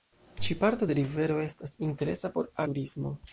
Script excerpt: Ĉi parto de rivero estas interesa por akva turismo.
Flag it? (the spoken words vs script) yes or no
yes